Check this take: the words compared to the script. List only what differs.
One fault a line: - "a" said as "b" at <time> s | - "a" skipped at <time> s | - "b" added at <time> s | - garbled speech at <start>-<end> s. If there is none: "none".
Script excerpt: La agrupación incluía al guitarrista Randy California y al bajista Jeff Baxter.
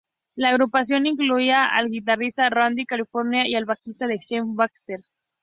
none